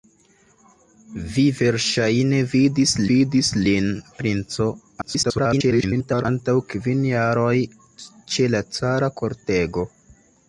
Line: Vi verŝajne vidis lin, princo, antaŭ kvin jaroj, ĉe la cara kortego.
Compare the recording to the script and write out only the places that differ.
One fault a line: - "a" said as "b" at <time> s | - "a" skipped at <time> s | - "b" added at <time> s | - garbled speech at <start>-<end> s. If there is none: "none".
- "vidis" added at 3.1 s
- garbled speech at 5.0-6.2 s